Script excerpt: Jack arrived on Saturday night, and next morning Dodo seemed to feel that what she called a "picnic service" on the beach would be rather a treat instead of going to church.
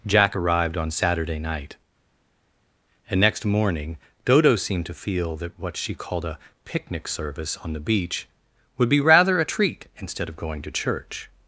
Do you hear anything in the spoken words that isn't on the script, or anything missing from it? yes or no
no